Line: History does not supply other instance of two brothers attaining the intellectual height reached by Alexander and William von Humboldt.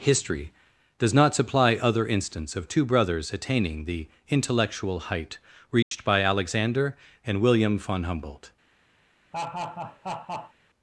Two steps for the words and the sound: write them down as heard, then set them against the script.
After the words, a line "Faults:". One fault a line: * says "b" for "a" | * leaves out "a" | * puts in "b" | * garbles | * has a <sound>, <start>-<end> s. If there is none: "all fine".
History does not supply other instance of two brothers attaining the intellectual height reached by Alexander and William von Humboldt.
Faults:
* has a dropout, 5.8-5.9 s
* has a laugh, 9.3-10.5 s